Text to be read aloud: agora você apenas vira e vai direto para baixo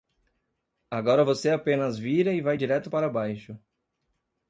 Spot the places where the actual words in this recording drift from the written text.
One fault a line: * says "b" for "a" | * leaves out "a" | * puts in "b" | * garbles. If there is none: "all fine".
all fine